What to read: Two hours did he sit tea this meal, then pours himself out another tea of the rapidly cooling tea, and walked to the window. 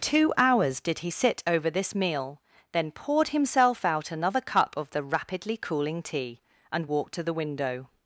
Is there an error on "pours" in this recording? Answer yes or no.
yes